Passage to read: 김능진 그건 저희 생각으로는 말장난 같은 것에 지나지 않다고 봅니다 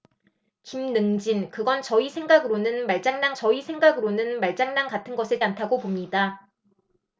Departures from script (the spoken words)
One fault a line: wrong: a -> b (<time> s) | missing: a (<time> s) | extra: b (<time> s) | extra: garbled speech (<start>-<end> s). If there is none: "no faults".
extra: 저희 생각으로는 말장난 (3.3 s)
missing: 지나지 (5.4 s)